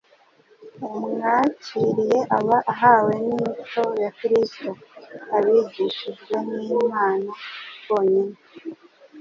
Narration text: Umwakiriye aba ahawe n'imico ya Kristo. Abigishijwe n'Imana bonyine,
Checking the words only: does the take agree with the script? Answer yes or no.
yes